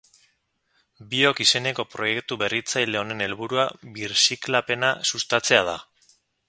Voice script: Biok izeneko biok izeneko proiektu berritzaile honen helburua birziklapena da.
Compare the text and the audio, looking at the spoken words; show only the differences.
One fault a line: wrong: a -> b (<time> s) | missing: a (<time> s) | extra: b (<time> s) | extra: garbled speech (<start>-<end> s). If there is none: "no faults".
missing: biok izeneko (1.9 s)
extra: sustatzea (5.1 s)